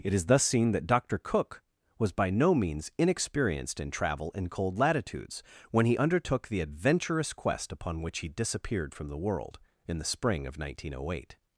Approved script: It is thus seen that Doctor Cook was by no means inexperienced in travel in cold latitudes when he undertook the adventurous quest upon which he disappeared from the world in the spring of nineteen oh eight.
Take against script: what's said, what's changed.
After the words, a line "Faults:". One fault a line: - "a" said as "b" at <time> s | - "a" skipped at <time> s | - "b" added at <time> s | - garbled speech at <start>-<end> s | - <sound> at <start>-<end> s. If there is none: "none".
It is thus seen that Doctor Cook was by no means inexperienced in travel in cold latitudes when he undertook the adventurous quest upon which he disappeared from the world in the spring of nineteen oh eight.
Faults:
none